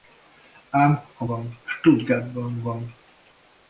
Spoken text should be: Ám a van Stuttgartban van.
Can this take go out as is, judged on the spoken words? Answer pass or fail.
pass